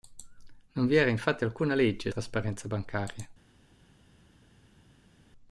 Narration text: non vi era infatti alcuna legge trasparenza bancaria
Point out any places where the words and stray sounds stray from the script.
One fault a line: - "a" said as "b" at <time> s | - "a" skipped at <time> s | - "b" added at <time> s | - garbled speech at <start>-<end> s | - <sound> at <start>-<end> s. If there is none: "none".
none